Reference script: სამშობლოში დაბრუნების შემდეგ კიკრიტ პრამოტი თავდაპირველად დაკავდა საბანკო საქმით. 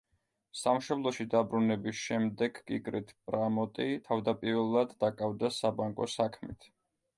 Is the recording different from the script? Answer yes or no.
no